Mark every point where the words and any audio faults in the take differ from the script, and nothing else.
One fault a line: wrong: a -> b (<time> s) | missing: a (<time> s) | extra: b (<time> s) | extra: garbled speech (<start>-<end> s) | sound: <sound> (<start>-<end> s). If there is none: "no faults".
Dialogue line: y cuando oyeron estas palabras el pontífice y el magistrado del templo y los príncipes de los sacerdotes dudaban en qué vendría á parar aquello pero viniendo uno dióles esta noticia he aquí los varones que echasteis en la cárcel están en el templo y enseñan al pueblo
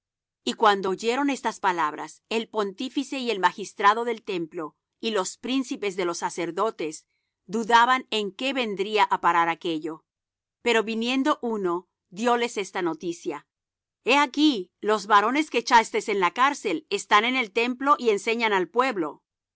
no faults